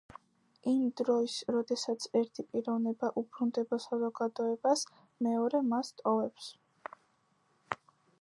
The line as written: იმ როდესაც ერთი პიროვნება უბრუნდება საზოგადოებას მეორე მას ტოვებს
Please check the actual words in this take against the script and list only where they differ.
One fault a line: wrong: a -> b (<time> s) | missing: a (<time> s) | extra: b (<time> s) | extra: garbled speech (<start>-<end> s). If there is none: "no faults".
extra: დროს (1.0 s)